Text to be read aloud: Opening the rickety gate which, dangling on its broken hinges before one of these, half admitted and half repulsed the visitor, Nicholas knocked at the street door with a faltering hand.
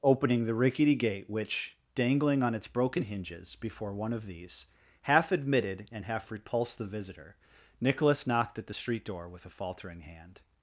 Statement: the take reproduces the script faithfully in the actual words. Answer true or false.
true